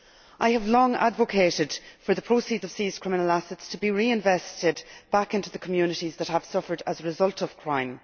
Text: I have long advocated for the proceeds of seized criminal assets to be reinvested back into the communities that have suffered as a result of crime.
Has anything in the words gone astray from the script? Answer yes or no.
no